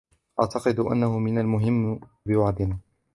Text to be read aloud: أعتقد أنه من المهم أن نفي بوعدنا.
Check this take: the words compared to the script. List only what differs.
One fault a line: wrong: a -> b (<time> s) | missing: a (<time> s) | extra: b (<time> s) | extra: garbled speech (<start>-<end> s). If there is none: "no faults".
missing: أن نفي (2.0 s)